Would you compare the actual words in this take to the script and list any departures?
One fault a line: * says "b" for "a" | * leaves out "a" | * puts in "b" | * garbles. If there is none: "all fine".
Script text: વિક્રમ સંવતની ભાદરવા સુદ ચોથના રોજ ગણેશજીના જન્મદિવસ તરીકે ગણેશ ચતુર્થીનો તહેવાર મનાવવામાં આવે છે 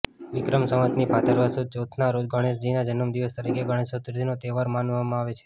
all fine